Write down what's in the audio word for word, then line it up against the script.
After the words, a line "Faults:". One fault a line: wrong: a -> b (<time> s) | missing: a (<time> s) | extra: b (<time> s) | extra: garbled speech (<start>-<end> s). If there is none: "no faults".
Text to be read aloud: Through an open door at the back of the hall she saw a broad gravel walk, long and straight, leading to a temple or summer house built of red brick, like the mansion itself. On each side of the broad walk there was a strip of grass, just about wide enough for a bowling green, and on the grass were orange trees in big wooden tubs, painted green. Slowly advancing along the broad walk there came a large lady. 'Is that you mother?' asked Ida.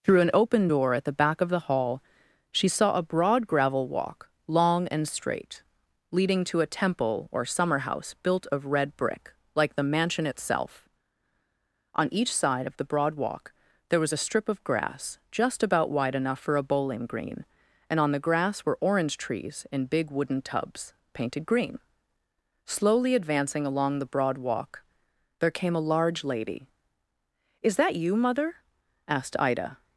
Through an open door at the back of the hall she saw a broad gravel walk, long and straight, leading to a temple or summer house built of red brick, like the mansion itself. On each side of the broad walk there was a strip of grass, just about wide enough for a bowling green, and on the grass were orange trees in big wooden tubs, painted green. Slowly advancing along the broad walk there came a large lady. 'Is that you mother?' asked Ida.
Faults:
no faults